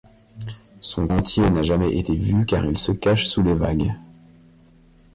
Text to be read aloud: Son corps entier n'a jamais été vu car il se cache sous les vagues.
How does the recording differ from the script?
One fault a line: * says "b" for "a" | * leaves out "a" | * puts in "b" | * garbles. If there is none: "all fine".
* leaves out "corps"